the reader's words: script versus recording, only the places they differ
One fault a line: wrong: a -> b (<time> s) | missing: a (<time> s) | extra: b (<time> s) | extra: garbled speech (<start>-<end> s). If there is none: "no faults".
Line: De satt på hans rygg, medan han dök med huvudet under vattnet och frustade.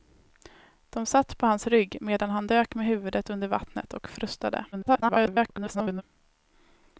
extra: garbled speech (4.7-6.0 s)